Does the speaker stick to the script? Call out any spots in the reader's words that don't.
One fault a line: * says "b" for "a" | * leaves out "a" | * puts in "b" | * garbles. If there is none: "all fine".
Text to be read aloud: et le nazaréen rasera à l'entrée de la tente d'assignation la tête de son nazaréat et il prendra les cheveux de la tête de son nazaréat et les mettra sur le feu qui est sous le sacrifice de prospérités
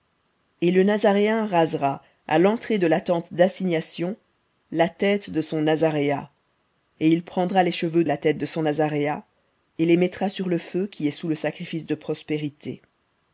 * leaves out "de"